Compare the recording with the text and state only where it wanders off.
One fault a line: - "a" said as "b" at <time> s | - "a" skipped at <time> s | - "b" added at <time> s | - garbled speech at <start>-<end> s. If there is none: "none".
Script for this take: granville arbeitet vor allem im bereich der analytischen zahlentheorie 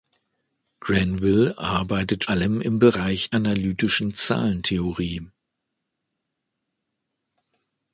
- "vor" skipped at 2.2 s
- "der" skipped at 3.3 s